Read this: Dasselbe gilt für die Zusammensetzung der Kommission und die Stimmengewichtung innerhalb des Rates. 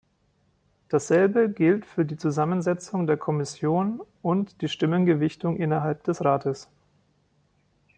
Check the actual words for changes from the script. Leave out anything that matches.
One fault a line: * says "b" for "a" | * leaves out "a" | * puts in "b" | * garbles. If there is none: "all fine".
all fine